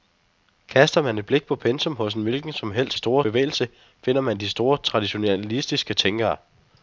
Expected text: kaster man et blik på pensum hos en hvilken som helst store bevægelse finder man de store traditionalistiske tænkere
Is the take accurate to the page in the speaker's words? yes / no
yes